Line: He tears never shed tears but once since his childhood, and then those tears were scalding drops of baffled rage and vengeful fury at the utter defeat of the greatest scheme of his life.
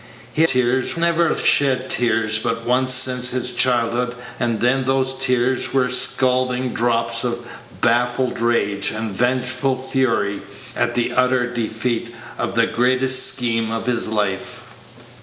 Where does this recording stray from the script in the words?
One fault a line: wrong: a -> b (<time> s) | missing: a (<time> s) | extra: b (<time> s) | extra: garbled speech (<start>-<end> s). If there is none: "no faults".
no faults